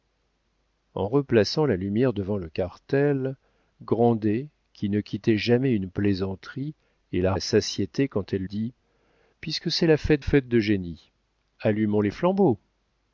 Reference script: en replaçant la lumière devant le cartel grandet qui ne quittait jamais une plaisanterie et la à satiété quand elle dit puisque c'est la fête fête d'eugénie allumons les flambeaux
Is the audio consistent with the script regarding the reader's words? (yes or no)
yes